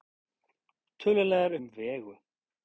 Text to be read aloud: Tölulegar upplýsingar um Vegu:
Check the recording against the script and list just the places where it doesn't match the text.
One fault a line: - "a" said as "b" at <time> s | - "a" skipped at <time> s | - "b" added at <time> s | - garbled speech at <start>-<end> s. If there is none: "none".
- "upplýsingar" skipped at 1.6 s